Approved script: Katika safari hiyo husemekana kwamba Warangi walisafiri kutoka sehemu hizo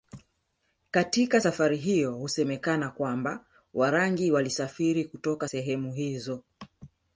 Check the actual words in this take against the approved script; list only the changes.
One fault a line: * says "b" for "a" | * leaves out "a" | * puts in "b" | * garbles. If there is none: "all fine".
all fine